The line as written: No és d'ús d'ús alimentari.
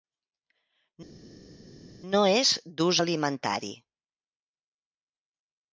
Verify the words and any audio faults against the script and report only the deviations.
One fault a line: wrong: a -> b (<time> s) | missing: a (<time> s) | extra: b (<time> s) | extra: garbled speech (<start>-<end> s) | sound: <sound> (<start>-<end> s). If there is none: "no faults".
missing: d'ús (3.0 s)